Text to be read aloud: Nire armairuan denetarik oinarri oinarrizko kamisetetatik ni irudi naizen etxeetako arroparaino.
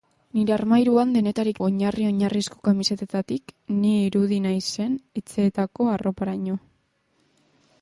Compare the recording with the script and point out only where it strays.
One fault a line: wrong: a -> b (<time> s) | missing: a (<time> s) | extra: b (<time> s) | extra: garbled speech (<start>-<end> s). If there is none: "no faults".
no faults